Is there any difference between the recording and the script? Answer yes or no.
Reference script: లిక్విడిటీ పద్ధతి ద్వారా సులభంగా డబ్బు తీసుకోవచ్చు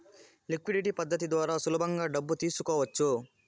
no